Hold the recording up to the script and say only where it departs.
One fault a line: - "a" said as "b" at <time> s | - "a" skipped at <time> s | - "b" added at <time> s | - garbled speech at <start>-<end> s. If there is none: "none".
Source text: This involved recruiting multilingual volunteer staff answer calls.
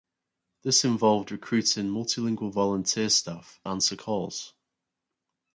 none